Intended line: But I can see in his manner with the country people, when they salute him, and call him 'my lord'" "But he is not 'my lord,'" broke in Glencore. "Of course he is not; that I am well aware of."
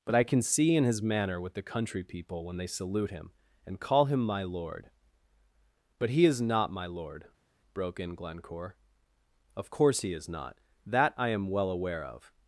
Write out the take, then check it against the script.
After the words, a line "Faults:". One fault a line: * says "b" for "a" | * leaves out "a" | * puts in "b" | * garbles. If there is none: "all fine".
But I can see in his manner with the country people, when they salute him, and call him 'my lord'" "But he is not 'my lord,'" broke in Glencore. "Of course he is not; that I am well aware of."
Faults:
all fine